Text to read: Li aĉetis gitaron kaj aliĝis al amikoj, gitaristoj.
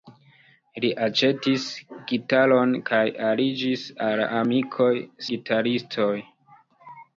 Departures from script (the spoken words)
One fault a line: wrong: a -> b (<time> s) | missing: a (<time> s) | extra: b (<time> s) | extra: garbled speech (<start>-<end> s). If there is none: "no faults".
no faults